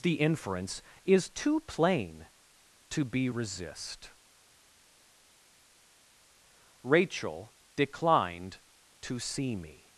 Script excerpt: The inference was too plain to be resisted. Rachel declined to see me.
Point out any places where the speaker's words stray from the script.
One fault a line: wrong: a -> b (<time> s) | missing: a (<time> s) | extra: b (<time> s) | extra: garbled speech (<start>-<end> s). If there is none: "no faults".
wrong: was -> is (1.1 s)
wrong: resisted -> resist (3.3 s)